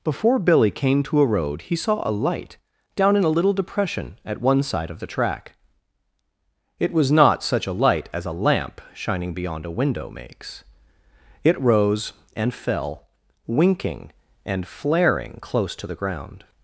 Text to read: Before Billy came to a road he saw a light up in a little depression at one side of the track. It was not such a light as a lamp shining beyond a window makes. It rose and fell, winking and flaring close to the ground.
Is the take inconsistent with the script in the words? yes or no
yes